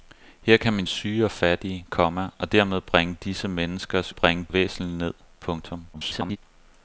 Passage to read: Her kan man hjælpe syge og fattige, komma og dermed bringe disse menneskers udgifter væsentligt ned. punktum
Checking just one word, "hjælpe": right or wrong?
wrong